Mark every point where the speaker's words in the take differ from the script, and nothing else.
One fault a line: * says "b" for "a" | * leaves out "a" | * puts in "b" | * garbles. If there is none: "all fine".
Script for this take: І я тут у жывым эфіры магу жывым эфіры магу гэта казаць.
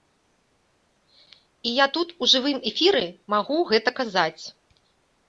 * leaves out "жывым эфіры магу"